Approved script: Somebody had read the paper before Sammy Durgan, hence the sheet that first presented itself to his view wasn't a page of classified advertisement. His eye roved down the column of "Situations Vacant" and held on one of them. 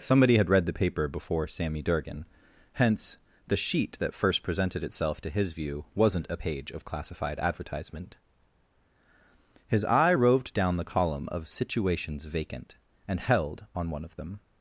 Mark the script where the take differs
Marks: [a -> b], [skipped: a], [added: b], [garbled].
Somebody had read the paper before Sammy Durgan, hence the sheet that first presented itself to his view wasn't a page of classified advertisement. His eye roved down the column of "Situations Vacant" and held on one of them.